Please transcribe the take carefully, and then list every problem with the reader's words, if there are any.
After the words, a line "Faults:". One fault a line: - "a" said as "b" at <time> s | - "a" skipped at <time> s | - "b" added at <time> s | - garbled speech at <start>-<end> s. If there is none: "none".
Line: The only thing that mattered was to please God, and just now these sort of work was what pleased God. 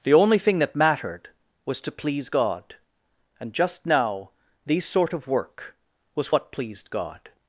The only thing that mattered was to please God, and just now these sort of work was what pleased God.
Faults:
none